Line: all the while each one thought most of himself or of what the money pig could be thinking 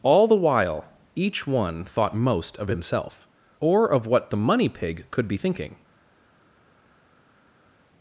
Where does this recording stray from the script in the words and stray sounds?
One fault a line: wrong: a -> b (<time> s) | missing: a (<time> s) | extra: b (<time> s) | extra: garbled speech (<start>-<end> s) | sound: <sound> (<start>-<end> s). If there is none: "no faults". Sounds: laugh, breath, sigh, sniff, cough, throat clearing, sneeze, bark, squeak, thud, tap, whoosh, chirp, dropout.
no faults